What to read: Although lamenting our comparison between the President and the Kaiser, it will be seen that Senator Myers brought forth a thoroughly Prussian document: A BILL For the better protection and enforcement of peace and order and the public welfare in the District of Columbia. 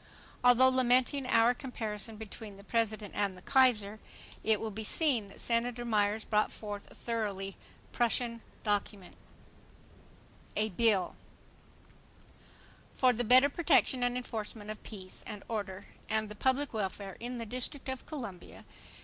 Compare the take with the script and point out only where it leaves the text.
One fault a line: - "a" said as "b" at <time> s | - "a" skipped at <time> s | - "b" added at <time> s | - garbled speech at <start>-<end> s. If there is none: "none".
none